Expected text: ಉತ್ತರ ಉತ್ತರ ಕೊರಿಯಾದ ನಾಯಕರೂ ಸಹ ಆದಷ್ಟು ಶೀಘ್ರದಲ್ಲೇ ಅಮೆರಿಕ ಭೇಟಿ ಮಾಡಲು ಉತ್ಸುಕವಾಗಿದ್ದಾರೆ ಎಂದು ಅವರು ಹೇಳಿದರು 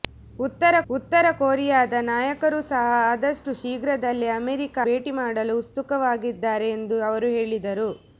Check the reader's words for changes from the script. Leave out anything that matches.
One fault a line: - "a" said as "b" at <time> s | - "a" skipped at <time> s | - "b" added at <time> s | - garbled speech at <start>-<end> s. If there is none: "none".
none